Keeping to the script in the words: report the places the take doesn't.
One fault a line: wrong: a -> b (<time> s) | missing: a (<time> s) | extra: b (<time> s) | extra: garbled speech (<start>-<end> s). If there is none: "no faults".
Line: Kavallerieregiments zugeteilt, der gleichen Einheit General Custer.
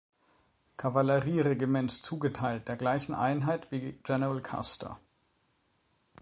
extra: wie (3.7 s)